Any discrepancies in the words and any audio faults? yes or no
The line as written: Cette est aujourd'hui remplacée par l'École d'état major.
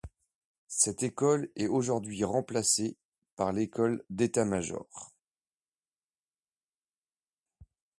yes